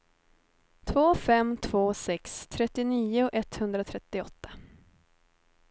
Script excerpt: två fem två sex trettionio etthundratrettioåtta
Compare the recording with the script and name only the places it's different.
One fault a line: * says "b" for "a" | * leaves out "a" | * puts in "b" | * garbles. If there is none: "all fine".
all fine